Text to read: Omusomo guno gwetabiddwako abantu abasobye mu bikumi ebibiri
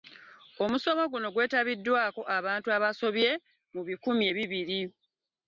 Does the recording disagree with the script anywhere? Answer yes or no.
no